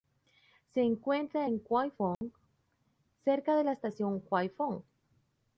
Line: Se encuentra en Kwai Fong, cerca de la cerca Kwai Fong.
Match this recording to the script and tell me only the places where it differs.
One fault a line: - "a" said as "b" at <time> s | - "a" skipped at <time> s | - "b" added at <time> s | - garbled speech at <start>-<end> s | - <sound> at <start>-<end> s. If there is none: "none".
- dropout at 2.1-2.2 s
- "cerca" said as "estación" at 3.7 s